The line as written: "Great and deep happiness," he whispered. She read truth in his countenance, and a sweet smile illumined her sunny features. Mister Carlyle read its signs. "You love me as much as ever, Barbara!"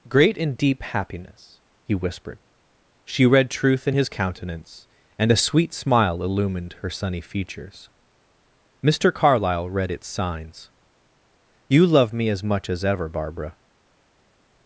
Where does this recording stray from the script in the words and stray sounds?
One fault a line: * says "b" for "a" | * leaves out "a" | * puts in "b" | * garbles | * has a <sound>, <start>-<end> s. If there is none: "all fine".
all fine